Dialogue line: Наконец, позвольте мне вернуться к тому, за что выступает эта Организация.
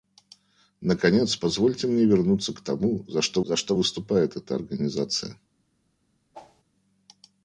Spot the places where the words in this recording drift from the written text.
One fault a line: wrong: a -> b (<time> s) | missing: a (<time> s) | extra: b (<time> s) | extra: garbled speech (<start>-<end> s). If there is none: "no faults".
extra: за что (3.4 s)